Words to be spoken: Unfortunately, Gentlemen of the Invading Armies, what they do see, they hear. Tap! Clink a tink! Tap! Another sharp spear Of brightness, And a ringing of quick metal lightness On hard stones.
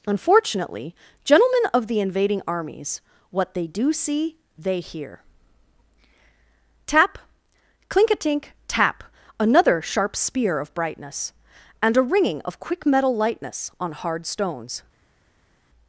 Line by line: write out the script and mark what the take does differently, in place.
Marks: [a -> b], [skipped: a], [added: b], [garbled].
Unfortunately, Gentlemen of the Invading Armies, what they do see, they hear. Tap! Clink a tink! Tap! Another sharp spear Of brightness, And a ringing of quick metal lightness On hard stones.